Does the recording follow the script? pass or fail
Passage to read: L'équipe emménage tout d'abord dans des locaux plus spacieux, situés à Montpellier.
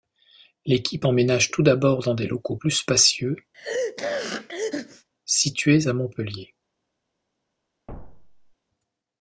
pass